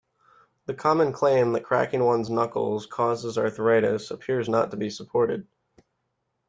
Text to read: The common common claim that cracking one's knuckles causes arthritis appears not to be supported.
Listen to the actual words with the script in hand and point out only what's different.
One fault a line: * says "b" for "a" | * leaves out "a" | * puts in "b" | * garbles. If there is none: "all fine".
* leaves out "common"